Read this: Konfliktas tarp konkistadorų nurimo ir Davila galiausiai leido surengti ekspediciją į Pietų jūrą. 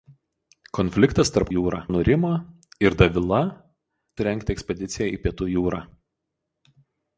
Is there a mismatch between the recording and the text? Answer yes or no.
yes